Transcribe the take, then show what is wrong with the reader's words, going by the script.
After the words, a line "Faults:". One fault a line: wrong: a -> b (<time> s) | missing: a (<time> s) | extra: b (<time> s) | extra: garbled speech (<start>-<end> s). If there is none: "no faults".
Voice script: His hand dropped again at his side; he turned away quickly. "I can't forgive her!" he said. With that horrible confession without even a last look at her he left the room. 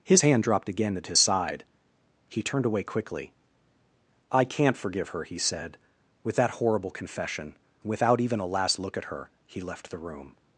His hand dropped again at his side; he turned away quickly. "I can't forgive her!" he said. With that horrible confession without even a last look at her he left the room.
Faults:
no faults